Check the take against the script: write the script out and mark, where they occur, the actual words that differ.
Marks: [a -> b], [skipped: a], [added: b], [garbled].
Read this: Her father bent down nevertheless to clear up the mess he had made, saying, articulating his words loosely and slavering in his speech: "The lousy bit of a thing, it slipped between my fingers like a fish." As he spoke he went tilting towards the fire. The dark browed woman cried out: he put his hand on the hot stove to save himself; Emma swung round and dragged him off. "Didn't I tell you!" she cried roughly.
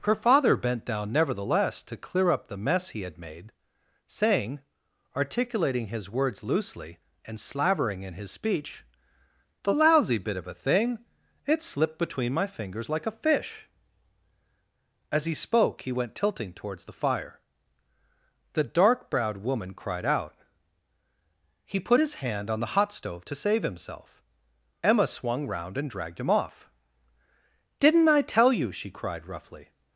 Her father bent down nevertheless to clear up the mess he had made, saying, articulating his words loosely and slavering in his speech: "The lousy bit of a thing, it slipped between my fingers like a fish." As he spoke he went tilting towards the fire. The dark browed woman cried out: he put his hand on the hot stove to save himself; Emma swung round and dragged him off. "Didn't I tell you!" she cried roughly.